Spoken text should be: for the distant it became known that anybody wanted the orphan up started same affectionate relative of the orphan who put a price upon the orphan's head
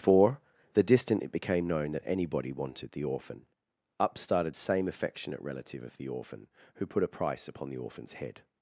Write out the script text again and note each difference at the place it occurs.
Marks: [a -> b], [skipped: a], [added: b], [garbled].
for the distant it became known that anybody wanted the orphan up started same affectionate relative of the orphan who put a price upon the orphan's head